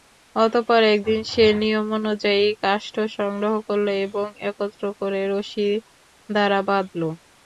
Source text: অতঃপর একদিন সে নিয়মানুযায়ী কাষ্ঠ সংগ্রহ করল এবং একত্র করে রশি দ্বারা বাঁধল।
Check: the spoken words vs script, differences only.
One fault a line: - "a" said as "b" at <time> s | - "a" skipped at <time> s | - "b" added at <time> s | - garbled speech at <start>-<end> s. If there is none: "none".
none